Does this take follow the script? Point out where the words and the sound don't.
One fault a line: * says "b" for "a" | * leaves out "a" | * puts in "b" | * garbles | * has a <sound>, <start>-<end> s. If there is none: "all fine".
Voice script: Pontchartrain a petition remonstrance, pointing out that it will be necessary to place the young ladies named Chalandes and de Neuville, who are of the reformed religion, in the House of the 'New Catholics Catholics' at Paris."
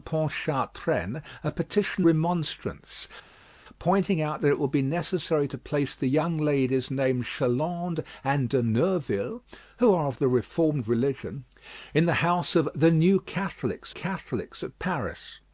all fine